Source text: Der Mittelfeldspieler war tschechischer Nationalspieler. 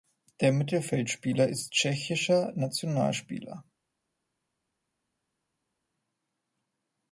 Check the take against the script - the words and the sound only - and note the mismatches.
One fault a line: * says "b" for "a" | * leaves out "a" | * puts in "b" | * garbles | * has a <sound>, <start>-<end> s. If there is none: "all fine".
* says "ist" for "war"